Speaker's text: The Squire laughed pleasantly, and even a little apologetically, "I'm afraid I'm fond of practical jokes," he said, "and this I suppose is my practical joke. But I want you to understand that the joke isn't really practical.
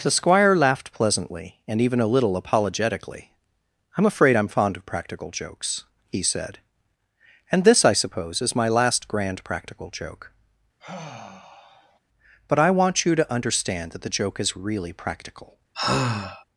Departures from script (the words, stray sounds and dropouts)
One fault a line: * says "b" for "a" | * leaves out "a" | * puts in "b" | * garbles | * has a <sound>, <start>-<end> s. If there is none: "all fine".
* puts in "last grand"
* has a sigh, 10.8-12.0 s
* says "is" for "isn't"
* has a sigh, 15.7-16.4 s